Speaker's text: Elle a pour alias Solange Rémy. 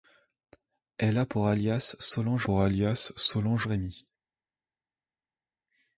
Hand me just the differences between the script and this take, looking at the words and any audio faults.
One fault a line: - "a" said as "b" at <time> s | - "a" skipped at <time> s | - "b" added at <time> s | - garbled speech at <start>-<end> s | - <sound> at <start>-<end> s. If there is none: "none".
- "pour alias Solange" added at 2.4 s